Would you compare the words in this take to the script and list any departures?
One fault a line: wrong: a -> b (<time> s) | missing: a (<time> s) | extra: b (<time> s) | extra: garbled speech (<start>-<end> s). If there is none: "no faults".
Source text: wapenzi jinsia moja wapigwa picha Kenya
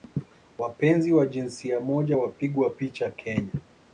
extra: wa (1.1 s)